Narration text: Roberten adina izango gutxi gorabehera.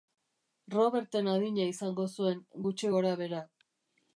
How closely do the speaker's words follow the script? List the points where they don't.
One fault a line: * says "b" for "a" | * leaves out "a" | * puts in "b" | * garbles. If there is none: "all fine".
* puts in "zuen"